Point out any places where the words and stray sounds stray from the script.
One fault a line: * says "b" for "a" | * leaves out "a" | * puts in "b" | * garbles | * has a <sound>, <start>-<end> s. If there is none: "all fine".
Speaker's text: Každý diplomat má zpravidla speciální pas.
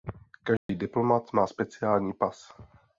* has a dropout, 0.6-0.7 s
* leaves out "zpravidla"